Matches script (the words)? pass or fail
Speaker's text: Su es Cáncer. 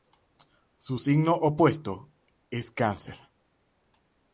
fail